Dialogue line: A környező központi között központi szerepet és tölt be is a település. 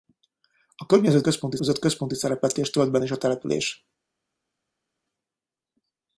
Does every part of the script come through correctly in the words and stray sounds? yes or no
yes